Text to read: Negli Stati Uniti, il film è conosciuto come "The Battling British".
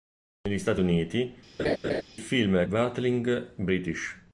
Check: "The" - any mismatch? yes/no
yes